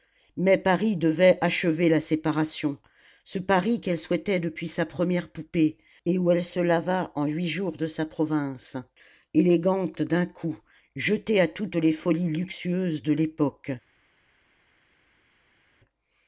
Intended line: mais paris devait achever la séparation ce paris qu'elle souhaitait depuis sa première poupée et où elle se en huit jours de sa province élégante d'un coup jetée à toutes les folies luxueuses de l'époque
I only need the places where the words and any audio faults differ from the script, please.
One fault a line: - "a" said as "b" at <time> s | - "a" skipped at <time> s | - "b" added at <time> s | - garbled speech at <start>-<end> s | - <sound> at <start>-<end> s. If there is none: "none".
- "lava" added at 6.6 s